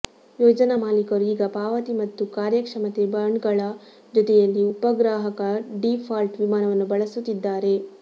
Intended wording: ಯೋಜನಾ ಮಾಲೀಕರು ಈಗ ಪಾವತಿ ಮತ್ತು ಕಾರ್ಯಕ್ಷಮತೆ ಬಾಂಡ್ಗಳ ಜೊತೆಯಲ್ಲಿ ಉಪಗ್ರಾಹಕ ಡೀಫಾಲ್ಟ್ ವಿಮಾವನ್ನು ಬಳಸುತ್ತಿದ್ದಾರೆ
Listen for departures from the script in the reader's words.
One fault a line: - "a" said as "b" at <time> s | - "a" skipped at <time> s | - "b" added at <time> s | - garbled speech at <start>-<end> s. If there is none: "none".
none